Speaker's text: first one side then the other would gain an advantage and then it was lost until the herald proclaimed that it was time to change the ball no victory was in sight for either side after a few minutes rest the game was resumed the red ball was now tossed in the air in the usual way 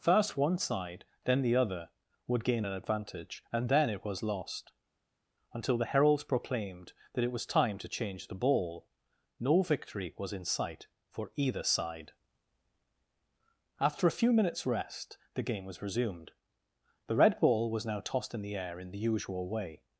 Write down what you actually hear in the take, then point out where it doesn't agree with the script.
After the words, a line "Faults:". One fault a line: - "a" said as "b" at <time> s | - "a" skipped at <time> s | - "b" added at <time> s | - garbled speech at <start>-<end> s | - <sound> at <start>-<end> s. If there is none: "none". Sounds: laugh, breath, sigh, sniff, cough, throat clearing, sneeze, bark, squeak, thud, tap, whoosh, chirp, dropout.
first one side then the other would gain an advantage and then it was lost until the heralds proclaimed that it was time to change the ball no victory was in sight for either side after a few minutes rest the game was resumed the red ball was now tossed in the air in the usual way
Faults:
- "herald" said as "heralds" at 5.9 s